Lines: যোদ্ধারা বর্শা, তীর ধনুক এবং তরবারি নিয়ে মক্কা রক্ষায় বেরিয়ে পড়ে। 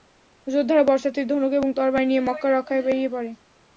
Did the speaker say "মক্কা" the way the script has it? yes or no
yes